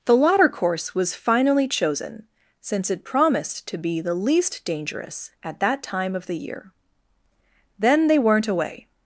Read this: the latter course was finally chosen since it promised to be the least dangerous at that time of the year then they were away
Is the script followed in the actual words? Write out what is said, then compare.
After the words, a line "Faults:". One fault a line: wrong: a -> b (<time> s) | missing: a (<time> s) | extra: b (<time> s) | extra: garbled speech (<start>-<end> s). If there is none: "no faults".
the latter course was finally chosen since it promised to be the least dangerous at that time of the year then they weren't away
Faults:
wrong: were -> weren't (8.2 s)